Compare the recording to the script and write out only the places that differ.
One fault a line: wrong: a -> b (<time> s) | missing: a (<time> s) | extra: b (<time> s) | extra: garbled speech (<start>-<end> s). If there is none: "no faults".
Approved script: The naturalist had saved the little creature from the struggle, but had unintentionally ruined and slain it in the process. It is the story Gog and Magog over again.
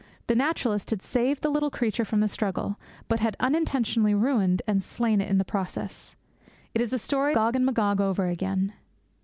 no faults